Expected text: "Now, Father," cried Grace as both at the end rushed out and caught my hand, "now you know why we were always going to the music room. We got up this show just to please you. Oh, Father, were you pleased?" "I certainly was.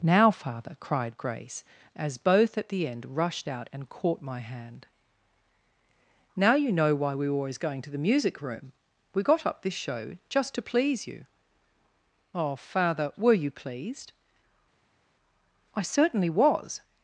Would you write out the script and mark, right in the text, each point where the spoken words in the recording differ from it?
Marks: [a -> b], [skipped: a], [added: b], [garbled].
"Now, Father," cried Grace as both at the end rushed out and caught my hand, "now you know why we were always going to the music room. We got up this show just to please you. Oh, Father, were you pleased?" "I certainly was.